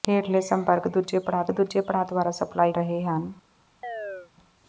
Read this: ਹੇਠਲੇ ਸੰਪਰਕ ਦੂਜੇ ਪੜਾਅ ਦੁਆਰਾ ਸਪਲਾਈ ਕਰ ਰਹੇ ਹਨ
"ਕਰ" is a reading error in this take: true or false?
true